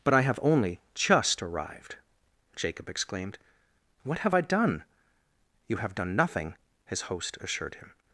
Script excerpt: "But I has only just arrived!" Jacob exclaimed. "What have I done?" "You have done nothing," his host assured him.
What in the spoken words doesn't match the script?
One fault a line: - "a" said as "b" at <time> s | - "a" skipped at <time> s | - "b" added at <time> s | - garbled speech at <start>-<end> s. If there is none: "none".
- "has" said as "have" at 0.2 s